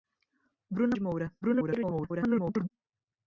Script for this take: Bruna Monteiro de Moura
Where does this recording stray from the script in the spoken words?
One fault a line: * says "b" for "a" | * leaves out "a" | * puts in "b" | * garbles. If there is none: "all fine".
* leaves out "Monteiro"
* garbles